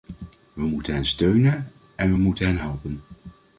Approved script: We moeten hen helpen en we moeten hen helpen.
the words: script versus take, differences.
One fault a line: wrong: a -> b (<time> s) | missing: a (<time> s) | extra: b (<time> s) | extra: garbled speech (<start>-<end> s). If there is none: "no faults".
wrong: helpen -> steunen (1.1 s)